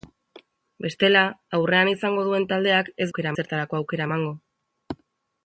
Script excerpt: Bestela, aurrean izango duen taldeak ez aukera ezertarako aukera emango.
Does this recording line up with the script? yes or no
yes